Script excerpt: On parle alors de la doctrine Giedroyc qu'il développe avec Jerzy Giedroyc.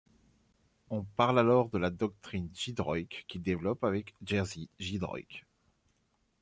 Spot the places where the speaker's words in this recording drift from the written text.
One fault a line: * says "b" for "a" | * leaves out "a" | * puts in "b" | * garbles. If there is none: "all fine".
all fine